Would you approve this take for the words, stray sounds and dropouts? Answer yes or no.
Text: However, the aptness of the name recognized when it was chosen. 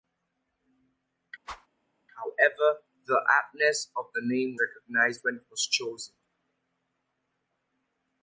no